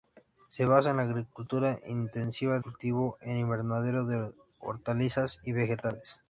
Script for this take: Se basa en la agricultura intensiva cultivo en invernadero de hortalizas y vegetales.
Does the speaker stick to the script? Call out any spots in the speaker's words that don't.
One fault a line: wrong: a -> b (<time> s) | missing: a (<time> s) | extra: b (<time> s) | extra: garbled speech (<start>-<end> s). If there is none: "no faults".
no faults